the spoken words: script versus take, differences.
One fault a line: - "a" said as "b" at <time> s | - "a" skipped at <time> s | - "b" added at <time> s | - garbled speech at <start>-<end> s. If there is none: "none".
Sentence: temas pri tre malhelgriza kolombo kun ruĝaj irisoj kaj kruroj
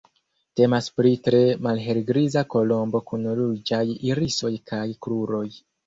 none